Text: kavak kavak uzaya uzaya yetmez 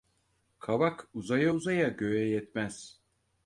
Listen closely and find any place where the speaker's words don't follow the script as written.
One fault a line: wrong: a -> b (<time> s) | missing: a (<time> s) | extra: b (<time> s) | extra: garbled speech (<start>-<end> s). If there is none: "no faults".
wrong: kavak -> uzaya (1.1 s)
wrong: uzaya -> göğe (1.9 s)